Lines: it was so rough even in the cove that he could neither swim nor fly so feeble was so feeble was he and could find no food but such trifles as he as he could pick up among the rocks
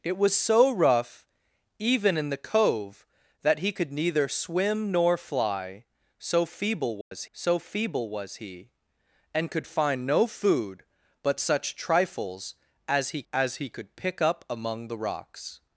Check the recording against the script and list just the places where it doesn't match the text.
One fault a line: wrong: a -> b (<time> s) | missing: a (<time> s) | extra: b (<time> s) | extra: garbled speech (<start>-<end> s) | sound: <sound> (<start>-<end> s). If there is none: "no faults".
sound: dropout (7.0-7.1 s)